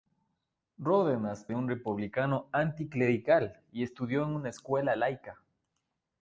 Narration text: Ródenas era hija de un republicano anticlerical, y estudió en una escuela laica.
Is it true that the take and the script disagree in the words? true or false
true